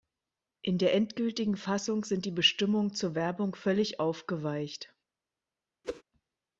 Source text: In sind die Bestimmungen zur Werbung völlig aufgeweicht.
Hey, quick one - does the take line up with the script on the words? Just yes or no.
no